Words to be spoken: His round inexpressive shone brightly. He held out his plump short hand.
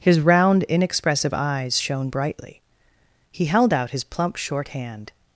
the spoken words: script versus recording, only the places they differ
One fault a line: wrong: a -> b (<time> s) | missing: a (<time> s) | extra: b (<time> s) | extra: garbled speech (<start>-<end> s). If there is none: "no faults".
extra: eyes (1.3 s)